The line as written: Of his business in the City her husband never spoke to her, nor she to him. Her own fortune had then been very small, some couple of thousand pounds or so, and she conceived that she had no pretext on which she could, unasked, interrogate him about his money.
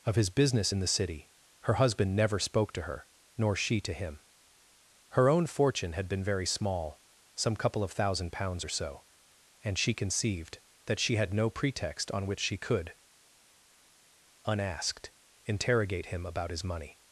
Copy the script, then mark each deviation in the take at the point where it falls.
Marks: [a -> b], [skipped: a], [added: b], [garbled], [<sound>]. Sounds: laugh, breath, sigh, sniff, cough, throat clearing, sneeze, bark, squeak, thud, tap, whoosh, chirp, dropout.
Of his business in the City her husband never spoke to her, nor she to him. Her own fortune had [skipped: then] been very small, some couple of thousand pounds or so, and she conceived that she had no pretext on which she could, unasked, interrogate him about his money.